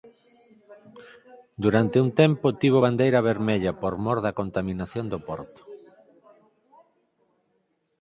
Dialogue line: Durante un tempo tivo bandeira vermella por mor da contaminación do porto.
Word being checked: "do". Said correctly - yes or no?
yes